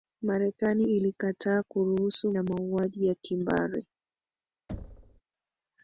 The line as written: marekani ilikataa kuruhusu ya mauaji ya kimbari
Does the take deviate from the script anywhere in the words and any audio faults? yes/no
yes